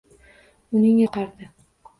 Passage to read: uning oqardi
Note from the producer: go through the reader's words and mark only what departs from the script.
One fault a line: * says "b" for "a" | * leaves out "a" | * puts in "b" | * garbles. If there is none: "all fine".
all fine